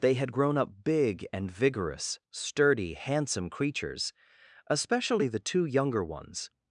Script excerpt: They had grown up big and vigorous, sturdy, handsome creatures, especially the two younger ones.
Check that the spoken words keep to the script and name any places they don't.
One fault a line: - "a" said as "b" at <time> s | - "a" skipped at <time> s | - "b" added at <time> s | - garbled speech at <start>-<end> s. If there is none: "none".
none